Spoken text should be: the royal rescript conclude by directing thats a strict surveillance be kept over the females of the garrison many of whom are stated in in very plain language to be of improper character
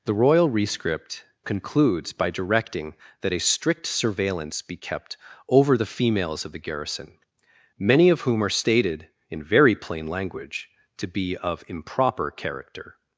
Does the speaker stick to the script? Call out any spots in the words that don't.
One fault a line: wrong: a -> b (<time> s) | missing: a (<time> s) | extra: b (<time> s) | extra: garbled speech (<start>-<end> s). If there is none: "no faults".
wrong: conclude -> concludes (1.4 s)
wrong: thats -> that (3.2 s)
missing: in (9.4 s)